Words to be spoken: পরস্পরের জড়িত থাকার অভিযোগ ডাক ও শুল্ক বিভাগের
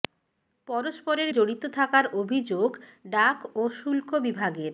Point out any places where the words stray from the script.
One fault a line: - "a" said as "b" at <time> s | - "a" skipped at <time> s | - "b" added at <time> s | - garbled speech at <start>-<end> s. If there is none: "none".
none